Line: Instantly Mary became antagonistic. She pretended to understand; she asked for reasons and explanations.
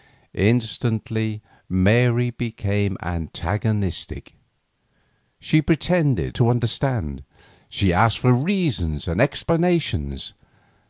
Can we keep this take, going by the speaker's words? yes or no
yes